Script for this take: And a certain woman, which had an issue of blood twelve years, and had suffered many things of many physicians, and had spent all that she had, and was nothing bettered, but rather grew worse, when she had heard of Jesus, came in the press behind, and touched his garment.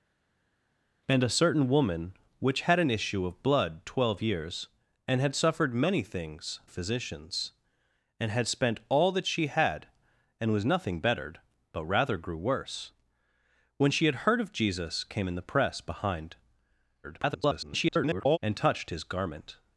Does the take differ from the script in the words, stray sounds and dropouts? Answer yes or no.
yes